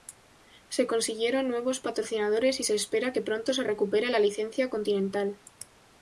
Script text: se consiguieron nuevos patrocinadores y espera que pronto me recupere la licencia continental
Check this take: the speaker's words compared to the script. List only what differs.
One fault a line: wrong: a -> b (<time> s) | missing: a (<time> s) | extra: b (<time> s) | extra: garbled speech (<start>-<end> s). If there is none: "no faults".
extra: se (2.6 s)
wrong: me -> se (3.5 s)